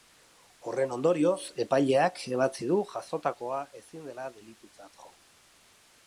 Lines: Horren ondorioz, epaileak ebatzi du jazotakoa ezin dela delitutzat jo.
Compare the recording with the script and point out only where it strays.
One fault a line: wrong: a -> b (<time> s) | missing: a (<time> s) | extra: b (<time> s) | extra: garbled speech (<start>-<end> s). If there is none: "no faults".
no faults